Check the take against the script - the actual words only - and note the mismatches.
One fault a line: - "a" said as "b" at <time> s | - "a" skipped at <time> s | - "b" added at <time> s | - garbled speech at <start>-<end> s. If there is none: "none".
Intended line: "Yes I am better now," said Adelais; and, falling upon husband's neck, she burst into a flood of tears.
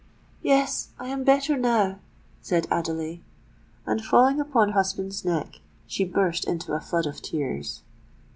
none